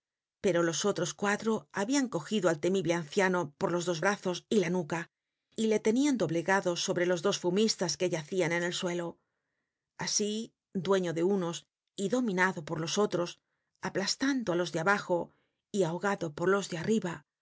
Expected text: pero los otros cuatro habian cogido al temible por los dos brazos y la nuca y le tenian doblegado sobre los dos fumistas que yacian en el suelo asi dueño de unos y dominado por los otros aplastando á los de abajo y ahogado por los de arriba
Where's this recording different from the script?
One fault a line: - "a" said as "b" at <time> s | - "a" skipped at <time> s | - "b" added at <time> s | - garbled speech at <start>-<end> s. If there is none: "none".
- "anciano" added at 2.9 s